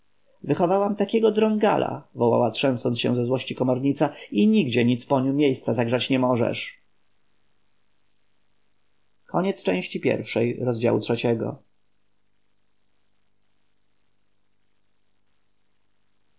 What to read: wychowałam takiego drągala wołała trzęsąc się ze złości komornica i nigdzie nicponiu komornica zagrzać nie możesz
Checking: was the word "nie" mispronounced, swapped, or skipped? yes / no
no